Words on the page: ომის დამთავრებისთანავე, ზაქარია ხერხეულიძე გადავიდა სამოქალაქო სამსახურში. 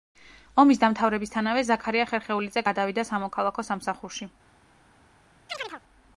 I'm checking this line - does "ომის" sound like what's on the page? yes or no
yes